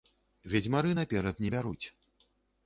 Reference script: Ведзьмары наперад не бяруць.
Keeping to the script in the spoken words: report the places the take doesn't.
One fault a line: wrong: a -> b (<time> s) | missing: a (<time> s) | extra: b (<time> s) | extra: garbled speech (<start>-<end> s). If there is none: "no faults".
no faults